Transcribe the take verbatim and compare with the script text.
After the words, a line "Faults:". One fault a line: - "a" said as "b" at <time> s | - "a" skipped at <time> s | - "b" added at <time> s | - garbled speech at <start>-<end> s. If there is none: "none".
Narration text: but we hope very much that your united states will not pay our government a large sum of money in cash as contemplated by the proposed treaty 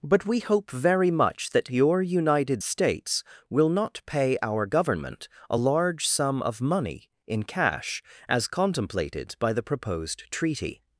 but we hope very much that your united states will not pay our government a large sum of money in cash as contemplated by the proposed treaty
Faults:
none